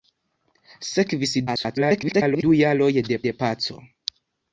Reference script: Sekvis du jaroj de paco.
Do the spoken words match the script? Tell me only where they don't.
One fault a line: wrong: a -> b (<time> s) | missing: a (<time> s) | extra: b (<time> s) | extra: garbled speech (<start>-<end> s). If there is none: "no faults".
extra: garbled speech (1.5-2.4 s)
extra: de (3.3 s)